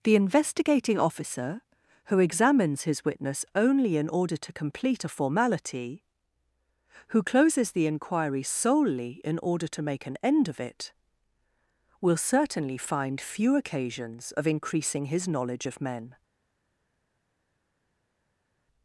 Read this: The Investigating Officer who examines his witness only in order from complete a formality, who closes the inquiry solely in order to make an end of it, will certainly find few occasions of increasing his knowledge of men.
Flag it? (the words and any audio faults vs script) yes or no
yes